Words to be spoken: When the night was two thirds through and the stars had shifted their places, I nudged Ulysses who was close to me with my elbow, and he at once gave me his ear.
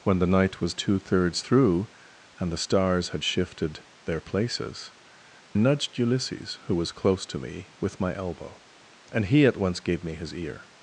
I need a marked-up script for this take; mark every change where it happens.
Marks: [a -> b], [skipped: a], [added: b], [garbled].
When the night was two thirds through and the stars had shifted their places, [skipped: I] nudged Ulysses who was close to me with my elbow, and he at once gave me his ear.